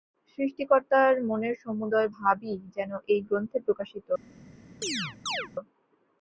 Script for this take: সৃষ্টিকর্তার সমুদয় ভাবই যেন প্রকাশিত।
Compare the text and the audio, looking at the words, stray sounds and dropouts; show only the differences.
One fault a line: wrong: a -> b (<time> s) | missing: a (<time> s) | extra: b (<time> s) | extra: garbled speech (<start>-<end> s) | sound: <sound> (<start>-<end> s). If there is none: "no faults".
extra: মনের (1.3 s)
extra: এই গ্রন্থে (3.1 s)
sound: chirp (4.8-5.5 s)